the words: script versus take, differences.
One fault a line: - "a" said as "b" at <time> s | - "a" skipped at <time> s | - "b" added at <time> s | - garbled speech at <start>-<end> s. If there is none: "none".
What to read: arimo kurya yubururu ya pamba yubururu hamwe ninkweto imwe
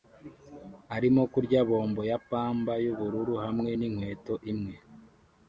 - "yubururu" said as "bombo" at 1.7 s